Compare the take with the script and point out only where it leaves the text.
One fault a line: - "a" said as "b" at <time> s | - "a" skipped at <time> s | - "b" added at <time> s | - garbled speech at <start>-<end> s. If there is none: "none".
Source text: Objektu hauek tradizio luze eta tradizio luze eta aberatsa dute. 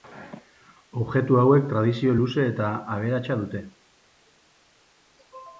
- "tradizio luze eta" skipped at 2.7 s